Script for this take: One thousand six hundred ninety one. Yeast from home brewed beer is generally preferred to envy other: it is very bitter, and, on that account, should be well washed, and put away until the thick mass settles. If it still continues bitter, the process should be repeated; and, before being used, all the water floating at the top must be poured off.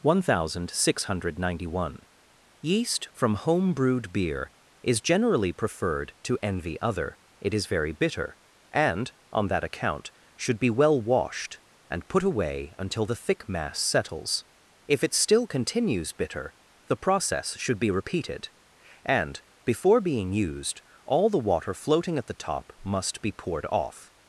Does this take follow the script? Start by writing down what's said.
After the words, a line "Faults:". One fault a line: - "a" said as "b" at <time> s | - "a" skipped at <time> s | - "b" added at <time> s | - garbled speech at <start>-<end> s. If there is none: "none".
One thousand six hundred ninety one. Yeast from home brewed beer is generally preferred to envy other: it is very bitter, and, on that account, should be well washed, and put away until the thick mass settles. If it still continues bitter, the process should be repeated; and, before being used, all the water floating at the top must be poured off.
Faults:
none